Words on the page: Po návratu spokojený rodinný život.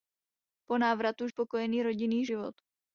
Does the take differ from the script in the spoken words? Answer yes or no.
no